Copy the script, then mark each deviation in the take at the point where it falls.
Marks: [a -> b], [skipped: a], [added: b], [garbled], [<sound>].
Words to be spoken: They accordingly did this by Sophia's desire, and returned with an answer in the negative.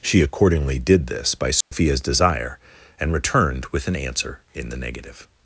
[They -> She] accordingly did this by Sophia's [dropout] desire, and returned with an answer in the negative.